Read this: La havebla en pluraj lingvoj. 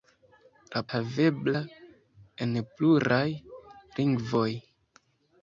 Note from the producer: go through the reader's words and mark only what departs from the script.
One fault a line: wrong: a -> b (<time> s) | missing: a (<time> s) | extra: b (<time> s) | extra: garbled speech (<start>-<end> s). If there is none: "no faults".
no faults